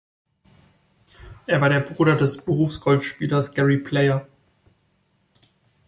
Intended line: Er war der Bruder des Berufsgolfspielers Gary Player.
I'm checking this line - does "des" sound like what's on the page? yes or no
yes